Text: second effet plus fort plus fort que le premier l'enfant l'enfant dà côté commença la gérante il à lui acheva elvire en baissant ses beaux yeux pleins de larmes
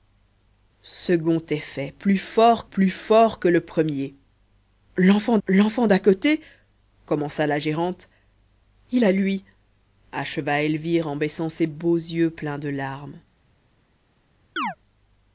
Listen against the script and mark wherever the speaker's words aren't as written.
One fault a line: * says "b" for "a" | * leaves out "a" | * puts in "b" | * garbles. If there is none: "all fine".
all fine